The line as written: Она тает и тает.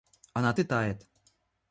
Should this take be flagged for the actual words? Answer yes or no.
yes